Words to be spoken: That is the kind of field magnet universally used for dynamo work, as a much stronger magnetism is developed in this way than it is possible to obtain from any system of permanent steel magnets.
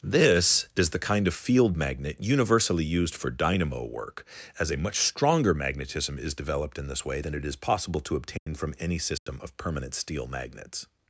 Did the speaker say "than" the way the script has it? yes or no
yes